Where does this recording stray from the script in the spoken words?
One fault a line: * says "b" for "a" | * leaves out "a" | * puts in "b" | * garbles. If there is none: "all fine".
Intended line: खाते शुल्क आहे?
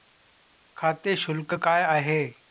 * puts in "काय"